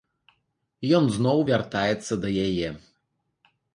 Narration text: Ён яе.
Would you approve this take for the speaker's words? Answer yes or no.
no